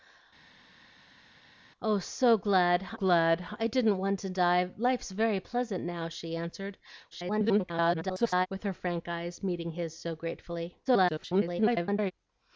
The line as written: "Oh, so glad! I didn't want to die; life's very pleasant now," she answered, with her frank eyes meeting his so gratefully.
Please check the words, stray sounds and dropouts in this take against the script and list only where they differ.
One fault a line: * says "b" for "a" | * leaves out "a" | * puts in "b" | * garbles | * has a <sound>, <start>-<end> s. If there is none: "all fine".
* puts in "glad"
* garbles
* garbles